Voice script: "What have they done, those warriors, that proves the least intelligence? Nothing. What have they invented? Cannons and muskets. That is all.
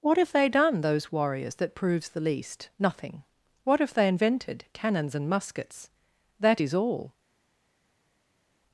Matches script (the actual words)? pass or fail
fail